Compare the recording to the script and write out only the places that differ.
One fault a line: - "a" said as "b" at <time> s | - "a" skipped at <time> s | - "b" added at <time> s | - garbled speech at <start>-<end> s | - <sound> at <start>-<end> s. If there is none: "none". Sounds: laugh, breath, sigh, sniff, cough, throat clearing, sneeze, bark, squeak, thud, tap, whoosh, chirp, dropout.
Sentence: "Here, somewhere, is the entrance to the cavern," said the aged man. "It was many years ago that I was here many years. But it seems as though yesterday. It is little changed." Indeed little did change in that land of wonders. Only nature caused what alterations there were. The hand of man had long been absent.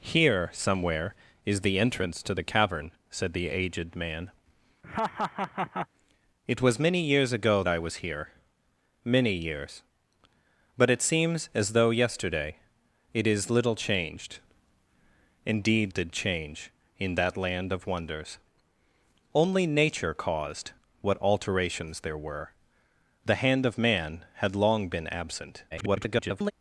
- laugh at 4.8-5.9 s
- "that" skipped at 7.6 s
- "little" skipped at 15.9 s
- garbled speech at 25.7-26.5 s